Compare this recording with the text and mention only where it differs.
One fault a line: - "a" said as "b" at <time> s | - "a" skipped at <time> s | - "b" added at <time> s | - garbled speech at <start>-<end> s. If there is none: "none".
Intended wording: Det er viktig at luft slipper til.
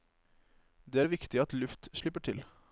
none